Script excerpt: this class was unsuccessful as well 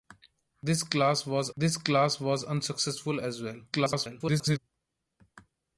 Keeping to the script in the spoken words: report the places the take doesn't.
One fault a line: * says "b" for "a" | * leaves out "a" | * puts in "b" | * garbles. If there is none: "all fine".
* puts in "this class was"
* garbles